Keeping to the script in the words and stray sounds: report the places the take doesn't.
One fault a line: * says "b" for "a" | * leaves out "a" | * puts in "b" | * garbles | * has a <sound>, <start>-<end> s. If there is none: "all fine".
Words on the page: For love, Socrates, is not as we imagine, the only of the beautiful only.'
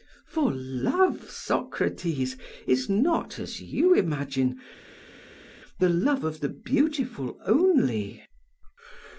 * says "you" for "we"
* says "love" for "only"